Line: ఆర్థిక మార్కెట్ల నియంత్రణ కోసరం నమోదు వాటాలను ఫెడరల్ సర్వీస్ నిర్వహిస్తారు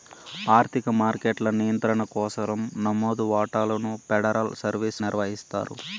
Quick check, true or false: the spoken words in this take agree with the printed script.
true